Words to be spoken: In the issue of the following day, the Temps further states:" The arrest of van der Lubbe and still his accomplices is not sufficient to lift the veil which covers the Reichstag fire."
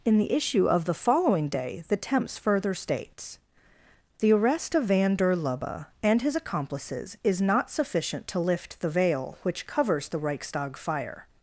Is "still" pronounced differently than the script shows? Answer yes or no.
yes